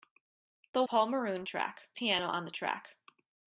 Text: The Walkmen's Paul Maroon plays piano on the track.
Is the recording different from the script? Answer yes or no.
yes